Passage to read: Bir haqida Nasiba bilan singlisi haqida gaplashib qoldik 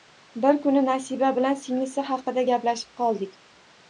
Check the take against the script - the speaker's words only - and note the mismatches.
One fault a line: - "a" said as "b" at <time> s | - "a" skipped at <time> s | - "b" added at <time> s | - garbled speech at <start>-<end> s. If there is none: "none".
- "haqida" said as "kuni" at 0.7 s